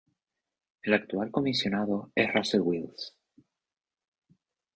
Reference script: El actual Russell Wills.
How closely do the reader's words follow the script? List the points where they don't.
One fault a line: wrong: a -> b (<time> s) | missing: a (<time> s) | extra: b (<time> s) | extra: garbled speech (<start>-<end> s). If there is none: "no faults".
extra: Comisionado es (1.3 s)